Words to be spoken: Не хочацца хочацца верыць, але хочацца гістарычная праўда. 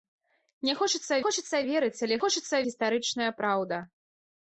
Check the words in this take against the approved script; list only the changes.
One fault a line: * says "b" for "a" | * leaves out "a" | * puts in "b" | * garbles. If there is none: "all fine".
all fine